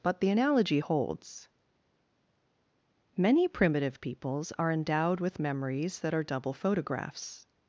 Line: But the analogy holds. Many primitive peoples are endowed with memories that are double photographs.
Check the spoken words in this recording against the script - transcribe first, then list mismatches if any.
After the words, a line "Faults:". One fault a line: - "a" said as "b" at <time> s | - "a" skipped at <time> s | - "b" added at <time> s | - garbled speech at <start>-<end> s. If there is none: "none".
But the analogy holds. Many primitive peoples are endowed with memories that are double photographs.
Faults:
none